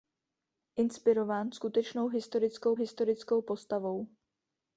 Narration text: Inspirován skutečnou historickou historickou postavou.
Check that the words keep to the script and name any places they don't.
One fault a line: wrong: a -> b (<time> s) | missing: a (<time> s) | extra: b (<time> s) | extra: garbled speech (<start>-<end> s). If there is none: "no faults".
no faults